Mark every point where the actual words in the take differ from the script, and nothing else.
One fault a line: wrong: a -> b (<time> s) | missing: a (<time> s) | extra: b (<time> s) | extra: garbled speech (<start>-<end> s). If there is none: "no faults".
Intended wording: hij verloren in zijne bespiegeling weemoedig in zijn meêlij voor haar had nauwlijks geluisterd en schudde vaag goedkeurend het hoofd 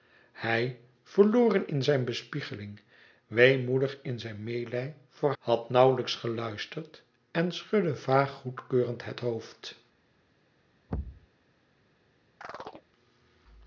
missing: haar (5.3 s)